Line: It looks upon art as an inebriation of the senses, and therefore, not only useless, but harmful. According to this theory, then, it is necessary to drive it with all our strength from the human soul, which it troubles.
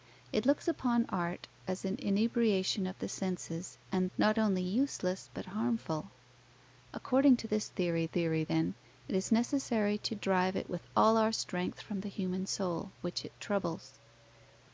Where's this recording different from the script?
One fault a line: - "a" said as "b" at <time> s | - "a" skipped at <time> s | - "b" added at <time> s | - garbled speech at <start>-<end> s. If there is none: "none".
- "therefore" skipped at 4.1 s
- "theory" added at 8.1 s